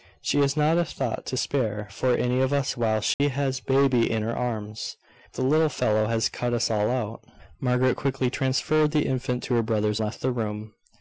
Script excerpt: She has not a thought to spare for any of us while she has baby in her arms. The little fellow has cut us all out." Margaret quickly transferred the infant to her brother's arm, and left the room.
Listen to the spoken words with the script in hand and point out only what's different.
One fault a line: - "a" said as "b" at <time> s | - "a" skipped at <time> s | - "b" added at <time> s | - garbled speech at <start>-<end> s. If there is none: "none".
- "arm and" skipped at 10.0 s